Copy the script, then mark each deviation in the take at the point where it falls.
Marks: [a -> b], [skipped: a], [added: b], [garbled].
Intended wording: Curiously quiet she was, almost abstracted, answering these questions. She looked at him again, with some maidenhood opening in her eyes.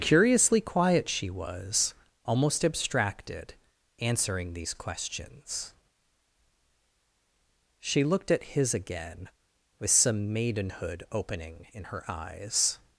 Curiously quiet she was, almost abstracted, answering these questions. She looked at [him -> his] again, with some maidenhood opening in her eyes.